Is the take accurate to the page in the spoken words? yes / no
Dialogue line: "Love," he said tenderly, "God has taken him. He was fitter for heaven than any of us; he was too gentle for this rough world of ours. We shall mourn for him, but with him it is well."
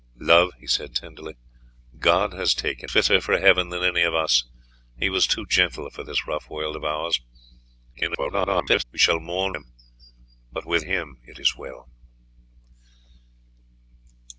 no